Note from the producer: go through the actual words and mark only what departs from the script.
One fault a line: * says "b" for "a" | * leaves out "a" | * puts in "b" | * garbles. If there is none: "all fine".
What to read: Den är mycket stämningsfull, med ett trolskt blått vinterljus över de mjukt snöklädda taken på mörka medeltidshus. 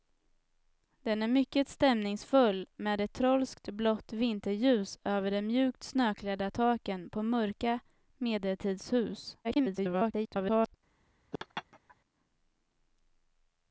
* garbles